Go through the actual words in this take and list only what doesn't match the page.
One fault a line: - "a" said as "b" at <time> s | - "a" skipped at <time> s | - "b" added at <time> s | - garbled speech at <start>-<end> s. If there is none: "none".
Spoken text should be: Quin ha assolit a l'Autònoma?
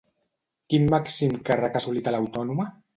- "màxim càrrec" added at 0.9 s